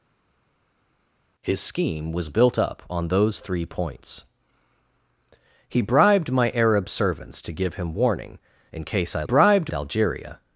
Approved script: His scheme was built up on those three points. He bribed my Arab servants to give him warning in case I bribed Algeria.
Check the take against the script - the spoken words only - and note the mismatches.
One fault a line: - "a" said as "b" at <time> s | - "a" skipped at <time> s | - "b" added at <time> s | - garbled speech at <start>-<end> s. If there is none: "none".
none